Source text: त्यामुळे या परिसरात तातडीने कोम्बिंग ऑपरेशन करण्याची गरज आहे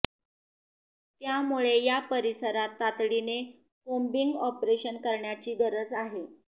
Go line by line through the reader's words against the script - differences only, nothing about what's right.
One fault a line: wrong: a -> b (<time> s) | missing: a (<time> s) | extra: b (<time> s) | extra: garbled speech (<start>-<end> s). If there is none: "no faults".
no faults